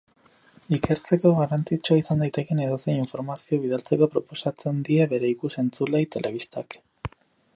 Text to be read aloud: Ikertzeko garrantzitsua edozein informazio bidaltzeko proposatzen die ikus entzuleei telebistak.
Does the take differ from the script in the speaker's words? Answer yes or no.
yes